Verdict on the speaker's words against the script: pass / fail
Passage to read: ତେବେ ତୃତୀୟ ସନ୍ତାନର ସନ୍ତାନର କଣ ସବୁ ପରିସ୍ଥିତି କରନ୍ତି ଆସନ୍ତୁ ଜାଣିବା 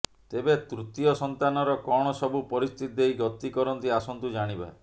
fail